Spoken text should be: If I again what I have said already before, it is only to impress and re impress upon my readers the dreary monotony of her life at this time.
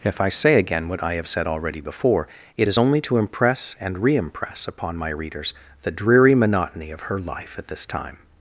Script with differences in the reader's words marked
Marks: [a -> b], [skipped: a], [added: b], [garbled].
If I [added: say] again what I have said already before, it is only to impress and re impress upon my readers the dreary monotony of her life at this time.